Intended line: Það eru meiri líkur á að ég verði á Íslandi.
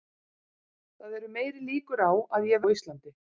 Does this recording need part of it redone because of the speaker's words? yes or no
yes